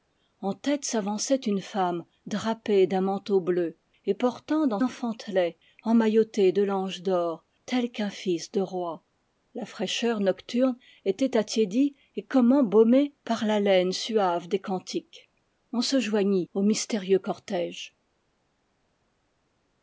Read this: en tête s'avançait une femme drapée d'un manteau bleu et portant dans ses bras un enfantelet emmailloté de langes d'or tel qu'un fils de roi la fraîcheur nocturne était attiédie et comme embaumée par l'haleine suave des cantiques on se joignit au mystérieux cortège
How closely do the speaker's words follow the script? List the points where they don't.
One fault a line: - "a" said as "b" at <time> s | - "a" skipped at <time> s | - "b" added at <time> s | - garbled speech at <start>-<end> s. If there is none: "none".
- "ses bras un" skipped at 4.8 s